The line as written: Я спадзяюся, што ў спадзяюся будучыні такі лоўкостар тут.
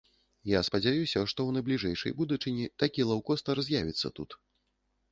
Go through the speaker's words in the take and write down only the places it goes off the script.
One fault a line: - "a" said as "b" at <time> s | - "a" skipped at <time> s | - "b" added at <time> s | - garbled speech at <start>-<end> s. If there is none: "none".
- "спадзяюся" said as "найбліжэйшай" at 1.6 s
- "з'явіцца" added at 3.7 s